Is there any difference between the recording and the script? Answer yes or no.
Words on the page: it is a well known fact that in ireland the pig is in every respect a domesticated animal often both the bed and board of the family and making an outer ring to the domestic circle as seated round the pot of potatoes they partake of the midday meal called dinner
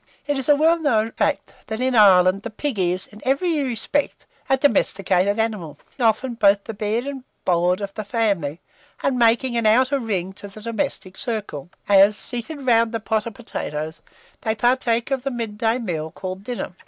no